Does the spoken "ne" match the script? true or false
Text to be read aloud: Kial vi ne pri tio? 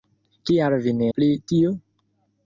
true